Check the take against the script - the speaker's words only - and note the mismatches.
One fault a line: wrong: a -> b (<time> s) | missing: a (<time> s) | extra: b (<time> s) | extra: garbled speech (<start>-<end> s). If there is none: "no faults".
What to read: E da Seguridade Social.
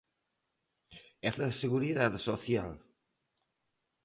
no faults